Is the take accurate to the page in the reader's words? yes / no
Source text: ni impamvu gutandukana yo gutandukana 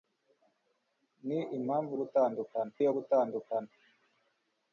yes